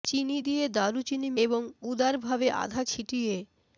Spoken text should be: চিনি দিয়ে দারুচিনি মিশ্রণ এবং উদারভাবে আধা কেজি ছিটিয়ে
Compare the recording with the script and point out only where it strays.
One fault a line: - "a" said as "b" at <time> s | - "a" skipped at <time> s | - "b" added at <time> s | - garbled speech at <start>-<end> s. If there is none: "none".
- "মিশ্রণ" skipped at 1.3 s
- "কেজি" skipped at 2.8 s